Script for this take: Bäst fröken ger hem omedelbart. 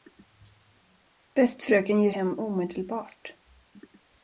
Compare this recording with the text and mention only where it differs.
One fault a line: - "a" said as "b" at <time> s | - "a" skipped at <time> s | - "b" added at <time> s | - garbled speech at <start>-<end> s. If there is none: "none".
none